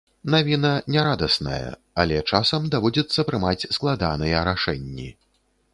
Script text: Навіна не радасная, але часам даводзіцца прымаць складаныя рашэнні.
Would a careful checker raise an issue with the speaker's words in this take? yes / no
no